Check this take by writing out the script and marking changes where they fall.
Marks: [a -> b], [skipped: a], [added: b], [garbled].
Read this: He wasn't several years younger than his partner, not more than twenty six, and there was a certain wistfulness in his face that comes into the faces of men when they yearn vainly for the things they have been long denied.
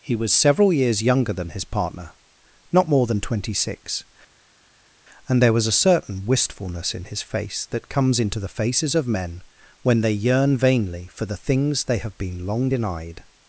He [wasn't -> was] several years younger than his partner, not more than twenty six, and there was a certain wistfulness in his face that comes into the faces of men when they yearn vainly for the things they have been long denied.